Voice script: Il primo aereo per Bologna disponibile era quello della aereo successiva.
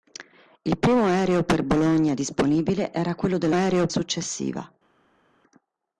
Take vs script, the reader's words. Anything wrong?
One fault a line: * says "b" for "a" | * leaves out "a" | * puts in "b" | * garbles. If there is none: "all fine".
all fine